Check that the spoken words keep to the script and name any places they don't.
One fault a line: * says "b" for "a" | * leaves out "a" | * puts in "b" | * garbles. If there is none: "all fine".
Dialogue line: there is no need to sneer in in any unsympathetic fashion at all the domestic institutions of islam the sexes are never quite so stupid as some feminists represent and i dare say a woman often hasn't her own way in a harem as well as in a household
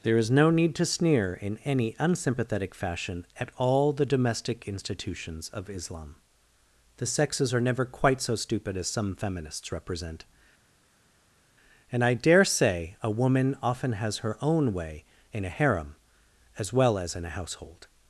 * leaves out "in"
* says "has" for "hasn't"